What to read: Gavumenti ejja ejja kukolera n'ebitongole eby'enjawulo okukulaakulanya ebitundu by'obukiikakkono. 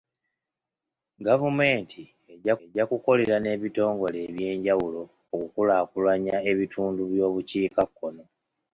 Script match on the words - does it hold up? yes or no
yes